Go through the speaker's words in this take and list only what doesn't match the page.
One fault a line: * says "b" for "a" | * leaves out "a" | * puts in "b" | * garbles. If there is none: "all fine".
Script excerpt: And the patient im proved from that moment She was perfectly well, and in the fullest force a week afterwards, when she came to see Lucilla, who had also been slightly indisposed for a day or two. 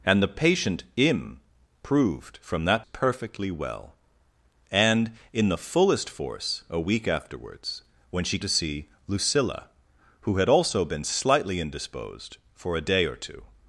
* leaves out "moment She was"
* leaves out "came"